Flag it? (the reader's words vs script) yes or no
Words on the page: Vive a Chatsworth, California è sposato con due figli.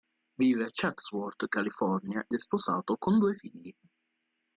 no